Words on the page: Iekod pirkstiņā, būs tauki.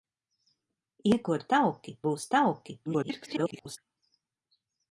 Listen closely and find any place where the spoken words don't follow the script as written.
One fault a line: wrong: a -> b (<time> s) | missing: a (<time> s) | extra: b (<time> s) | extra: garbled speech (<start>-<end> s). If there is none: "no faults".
wrong: pirkstiņā -> tauki (1.5 s)
extra: garbled speech (2.9-3.8 s)